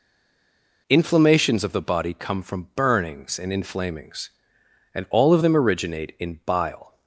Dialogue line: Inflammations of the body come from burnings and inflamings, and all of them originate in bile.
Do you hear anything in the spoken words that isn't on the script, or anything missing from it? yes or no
no